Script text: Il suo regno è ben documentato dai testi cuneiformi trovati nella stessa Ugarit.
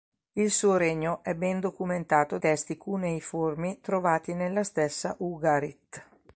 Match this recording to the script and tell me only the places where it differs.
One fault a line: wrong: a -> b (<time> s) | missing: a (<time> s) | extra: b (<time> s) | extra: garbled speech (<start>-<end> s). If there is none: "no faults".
missing: dai (2.4 s)